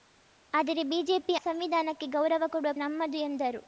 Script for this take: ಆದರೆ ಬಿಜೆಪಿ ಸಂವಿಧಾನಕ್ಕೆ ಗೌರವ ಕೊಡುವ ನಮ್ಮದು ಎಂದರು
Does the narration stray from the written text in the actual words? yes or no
no